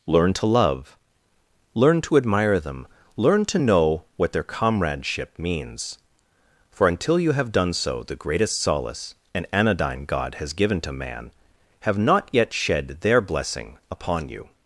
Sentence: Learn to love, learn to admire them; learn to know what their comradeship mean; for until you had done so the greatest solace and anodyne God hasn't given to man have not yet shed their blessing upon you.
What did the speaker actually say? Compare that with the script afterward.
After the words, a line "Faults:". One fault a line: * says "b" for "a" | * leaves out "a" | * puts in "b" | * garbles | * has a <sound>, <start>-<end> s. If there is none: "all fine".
Learn to love, learn to admire them; learn to know what their comradeship means; for until you have done so the greatest solace and anodyne God has given to man have not yet shed their blessing upon you.
Faults:
* says "means" for "mean"
* says "have" for "had"
* says "has" for "hasn't"